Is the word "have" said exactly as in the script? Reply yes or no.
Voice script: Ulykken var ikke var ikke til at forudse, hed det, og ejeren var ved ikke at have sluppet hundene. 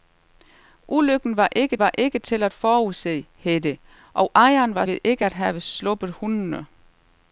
yes